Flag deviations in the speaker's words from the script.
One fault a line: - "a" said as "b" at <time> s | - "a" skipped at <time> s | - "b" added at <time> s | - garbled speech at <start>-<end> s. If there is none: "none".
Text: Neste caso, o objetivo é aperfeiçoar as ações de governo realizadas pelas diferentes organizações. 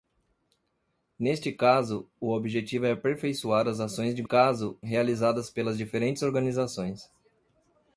- "governo" said as "caso" at 4.2 s